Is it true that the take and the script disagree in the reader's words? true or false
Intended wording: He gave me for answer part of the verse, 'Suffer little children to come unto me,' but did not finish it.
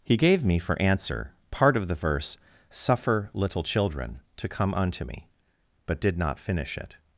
false